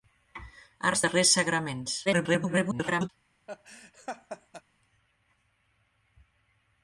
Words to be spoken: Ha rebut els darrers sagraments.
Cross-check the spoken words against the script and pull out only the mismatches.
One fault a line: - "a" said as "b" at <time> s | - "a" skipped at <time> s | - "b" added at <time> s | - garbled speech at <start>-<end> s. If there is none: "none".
- "rebut" skipped at 0.9 s
- garbled speech at 2.1-3.1 s